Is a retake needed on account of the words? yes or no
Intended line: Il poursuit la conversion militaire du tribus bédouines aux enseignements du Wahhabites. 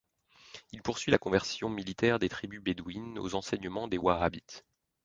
yes